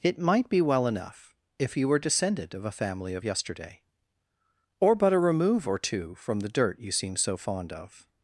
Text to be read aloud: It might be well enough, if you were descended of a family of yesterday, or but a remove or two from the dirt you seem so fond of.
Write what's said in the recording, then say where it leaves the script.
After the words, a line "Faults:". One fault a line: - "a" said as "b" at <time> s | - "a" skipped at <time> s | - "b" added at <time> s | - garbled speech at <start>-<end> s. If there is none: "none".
It might be well enough, if you were descended of a family of yesterday, or but a remove or two from the dirt you seem so fond of.
Faults:
none